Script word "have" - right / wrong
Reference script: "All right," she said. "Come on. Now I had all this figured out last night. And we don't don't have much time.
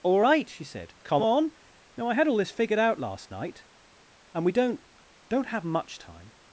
right